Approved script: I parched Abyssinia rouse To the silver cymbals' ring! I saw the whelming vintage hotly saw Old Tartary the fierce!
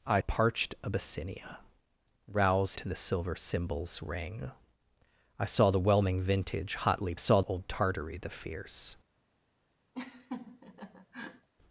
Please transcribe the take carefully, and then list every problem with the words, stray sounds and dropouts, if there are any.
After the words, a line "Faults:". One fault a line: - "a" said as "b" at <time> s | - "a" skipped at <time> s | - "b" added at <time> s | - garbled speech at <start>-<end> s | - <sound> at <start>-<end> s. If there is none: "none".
I parched Abyssinia rouse To the silver cymbals' ring! I saw the whelming vintage hotly saw Old Tartary the fierce!
Faults:
- laugh at 9.9-11.5 s